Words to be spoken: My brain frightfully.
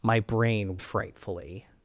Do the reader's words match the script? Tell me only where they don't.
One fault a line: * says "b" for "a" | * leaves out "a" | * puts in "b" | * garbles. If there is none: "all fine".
all fine